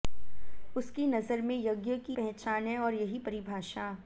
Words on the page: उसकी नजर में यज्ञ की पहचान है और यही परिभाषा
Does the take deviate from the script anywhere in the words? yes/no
no